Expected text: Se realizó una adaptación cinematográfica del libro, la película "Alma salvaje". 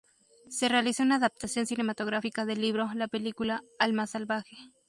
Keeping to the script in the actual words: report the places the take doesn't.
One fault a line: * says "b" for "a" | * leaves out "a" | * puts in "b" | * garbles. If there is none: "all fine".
all fine